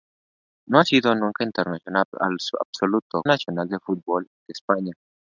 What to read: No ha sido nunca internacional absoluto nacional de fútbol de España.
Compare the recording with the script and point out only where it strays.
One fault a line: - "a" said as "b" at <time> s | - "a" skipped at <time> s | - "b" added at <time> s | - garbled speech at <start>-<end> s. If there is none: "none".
none